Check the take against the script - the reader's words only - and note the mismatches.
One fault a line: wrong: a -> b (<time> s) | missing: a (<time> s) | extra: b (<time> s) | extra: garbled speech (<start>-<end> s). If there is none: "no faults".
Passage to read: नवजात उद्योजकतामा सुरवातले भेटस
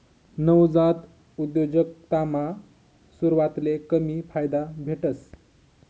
extra: कमी फायदा (3.9 s)